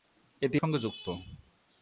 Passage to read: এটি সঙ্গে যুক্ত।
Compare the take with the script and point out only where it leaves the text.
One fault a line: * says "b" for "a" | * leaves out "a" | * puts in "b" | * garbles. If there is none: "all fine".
all fine